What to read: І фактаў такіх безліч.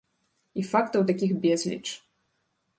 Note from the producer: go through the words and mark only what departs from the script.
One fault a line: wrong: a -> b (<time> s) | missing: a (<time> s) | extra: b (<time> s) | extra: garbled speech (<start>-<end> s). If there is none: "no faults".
no faults